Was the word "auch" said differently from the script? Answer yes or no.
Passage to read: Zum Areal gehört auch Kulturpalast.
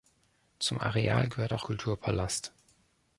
no